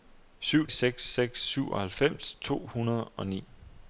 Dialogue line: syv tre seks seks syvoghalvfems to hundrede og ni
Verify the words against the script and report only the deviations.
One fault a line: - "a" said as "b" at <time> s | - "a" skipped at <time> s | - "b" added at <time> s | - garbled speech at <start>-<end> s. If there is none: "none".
- "tre" skipped at 0.7 s